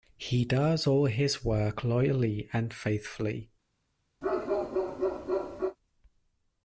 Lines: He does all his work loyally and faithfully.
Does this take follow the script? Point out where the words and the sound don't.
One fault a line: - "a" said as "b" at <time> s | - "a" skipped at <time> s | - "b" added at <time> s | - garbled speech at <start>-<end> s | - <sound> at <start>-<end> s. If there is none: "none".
- bark at 4.2-5.8 s